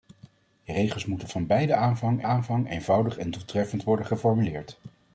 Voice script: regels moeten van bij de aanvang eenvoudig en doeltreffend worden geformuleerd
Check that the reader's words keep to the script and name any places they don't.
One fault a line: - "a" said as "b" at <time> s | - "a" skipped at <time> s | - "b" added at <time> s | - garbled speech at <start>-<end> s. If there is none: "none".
- "aanvang" added at 2.2 s